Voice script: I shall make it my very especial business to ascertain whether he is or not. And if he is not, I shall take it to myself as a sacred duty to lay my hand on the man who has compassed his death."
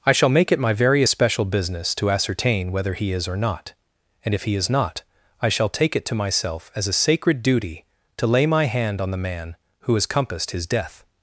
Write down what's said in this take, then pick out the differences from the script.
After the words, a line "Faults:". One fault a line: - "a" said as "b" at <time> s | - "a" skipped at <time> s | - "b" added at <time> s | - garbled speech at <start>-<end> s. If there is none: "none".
I shall make it my very especial business to ascertain whether he is or not. And if he is not, I shall take it to myself as a sacred duty to lay my hand on the man who has compassed his death."
Faults:
none